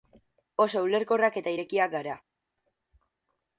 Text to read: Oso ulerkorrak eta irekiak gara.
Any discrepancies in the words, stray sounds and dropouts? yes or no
no